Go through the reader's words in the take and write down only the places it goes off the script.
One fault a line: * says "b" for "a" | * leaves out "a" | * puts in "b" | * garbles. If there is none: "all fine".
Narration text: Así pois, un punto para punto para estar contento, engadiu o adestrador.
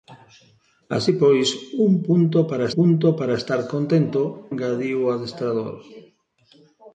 all fine